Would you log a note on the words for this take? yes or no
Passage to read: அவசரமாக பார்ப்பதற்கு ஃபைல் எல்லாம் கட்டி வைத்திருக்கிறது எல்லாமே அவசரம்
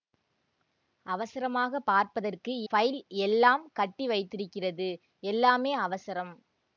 no